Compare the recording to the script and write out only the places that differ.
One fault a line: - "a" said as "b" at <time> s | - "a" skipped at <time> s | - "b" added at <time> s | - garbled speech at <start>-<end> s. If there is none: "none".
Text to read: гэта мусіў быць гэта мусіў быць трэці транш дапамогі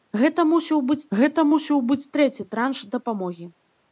none